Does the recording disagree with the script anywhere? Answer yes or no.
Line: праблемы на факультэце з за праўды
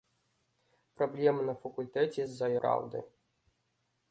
no